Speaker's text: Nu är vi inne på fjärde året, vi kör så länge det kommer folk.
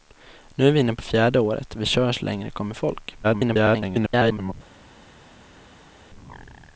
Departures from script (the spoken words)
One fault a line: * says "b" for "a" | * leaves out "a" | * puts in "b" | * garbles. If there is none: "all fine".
* garbles